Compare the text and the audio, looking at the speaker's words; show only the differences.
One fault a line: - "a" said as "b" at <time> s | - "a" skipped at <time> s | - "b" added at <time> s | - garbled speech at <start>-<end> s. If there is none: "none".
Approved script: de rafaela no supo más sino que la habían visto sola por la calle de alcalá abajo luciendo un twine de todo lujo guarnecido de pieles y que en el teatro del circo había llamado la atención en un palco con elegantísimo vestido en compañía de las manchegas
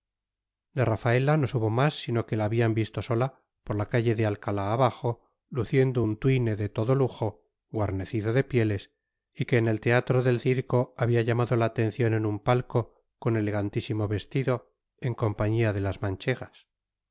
none